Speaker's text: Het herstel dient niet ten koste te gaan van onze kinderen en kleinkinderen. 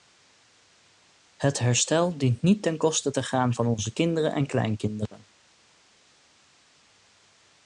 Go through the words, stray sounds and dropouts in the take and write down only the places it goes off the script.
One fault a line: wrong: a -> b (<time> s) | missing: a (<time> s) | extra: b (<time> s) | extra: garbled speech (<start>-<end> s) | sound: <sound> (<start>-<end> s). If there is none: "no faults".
no faults